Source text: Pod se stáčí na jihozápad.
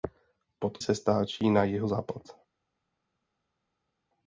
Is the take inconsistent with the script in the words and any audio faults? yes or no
no